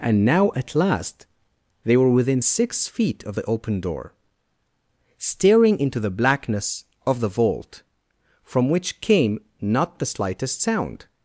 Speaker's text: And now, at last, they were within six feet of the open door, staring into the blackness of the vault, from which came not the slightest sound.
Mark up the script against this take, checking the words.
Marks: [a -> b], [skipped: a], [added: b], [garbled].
And now, at last, they were within six feet of the open door, staring into the blackness of the vault, from which came not the slightest sound.